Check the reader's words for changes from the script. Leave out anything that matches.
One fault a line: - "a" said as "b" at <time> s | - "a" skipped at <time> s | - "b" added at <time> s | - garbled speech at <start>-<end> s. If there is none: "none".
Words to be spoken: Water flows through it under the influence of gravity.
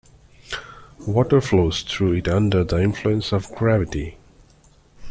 none